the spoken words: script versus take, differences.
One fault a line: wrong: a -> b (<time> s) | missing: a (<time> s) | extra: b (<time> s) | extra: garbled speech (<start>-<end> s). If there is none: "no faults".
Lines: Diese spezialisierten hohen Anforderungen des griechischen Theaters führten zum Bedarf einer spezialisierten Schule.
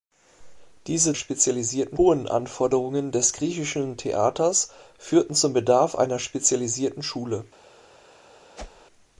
no faults